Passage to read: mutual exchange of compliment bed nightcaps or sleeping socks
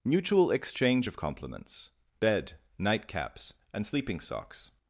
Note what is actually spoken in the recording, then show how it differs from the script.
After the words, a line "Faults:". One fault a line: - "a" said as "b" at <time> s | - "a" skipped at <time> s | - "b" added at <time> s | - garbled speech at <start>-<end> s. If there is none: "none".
mutual exchange of compliments bed nightcaps and sleeping socks
Faults:
- "compliment" said as "compliments" at 1.2 s
- "or" said as "and" at 3.7 s